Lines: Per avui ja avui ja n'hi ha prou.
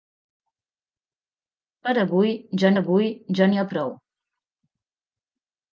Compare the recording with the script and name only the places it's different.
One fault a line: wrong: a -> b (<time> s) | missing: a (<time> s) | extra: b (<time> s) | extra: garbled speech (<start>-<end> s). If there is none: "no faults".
no faults